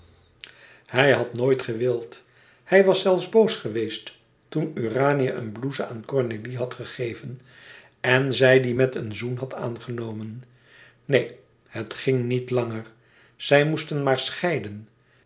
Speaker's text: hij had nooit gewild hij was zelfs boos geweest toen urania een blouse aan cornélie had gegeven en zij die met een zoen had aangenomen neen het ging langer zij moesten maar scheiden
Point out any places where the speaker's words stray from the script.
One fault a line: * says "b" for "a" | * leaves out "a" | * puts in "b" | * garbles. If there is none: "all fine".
* puts in "niet"